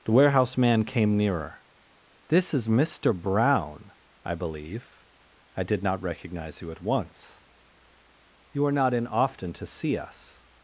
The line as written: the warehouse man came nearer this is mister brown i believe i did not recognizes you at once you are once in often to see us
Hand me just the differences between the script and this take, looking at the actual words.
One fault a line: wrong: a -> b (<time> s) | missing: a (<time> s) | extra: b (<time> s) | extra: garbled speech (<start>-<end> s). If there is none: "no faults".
wrong: recognizes -> recognize (6.0 s)
wrong: once -> not (8.7 s)